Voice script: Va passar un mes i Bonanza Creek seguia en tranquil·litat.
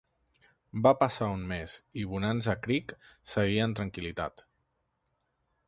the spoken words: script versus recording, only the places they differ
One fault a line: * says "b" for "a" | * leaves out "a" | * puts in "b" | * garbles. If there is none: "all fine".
all fine